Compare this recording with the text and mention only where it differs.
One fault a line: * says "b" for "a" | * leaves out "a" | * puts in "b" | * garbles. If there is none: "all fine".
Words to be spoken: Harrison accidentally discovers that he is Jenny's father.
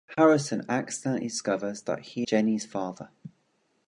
* leaves out "is"